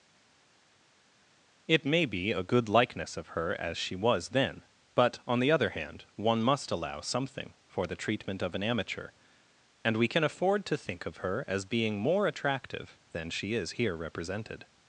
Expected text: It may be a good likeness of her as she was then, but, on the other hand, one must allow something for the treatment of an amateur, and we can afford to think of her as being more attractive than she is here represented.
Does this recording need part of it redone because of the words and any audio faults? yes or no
no